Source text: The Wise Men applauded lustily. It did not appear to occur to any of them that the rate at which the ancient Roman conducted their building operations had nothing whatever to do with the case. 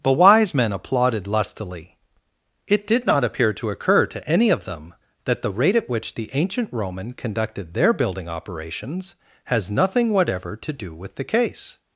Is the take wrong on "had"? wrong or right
wrong